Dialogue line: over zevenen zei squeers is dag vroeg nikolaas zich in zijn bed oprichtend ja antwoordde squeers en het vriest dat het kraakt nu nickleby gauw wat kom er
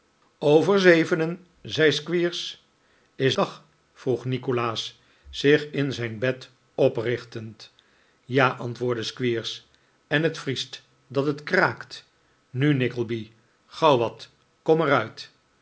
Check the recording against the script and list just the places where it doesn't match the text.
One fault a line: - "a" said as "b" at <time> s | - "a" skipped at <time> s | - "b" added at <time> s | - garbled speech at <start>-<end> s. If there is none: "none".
none